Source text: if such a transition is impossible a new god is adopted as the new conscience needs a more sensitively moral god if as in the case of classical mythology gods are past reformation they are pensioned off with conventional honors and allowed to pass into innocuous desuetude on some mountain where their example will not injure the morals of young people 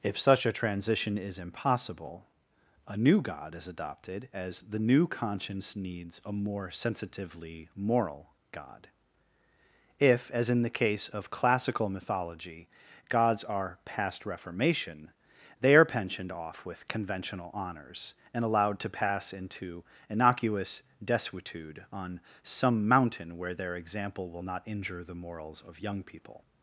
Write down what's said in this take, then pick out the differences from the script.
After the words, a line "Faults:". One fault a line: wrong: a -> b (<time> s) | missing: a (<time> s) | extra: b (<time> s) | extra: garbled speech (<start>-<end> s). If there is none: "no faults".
if such a transition is impossible a new god is adopted as the new conscience needs a more sensitively moral god if as in the case of classical mythology gods are past reformation they are pensioned off with conventional honors and allowed to pass into innocuous desuetude on some mountain where their example will not injure the morals of young people
Faults:
no faults